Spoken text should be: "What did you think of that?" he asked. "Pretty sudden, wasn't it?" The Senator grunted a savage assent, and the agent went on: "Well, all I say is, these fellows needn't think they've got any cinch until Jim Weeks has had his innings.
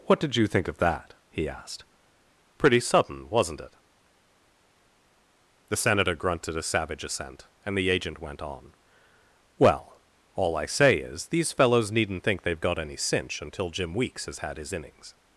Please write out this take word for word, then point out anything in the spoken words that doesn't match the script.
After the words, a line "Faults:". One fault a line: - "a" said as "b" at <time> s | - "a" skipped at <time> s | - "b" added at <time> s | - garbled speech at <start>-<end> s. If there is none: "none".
"What did you think of that?" he asked. "Pretty sudden, wasn't it?" The Senator grunted a savage assent, and the agent went on: "Well, all I say is, these fellows needn't think they've got any cinch until Jim Weeks has had his innings.
Faults:
none